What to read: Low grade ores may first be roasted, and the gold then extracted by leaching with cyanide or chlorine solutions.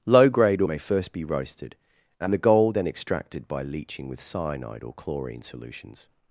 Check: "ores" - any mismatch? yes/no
yes